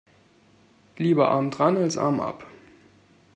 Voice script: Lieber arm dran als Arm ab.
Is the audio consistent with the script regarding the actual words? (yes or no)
yes